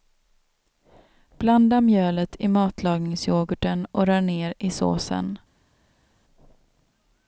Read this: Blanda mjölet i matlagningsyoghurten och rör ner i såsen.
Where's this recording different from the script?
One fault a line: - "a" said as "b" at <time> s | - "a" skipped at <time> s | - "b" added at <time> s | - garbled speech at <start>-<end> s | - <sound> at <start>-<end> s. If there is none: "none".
none